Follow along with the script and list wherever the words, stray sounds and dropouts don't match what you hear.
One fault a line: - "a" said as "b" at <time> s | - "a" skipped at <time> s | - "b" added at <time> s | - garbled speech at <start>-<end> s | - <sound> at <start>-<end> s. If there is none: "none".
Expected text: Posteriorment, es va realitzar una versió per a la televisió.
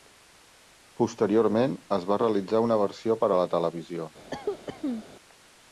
- cough at 4.3-5.0 s